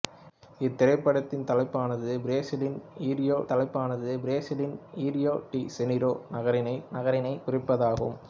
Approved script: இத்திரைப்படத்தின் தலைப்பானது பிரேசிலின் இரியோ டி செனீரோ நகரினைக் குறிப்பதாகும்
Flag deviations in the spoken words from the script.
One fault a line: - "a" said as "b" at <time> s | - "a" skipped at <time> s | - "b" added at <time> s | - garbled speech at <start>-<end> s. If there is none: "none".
- "தலைப்பானது பிரேசிலின் இரியோ" added at 3.5 s
- "நகரினைக்" added at 6.9 s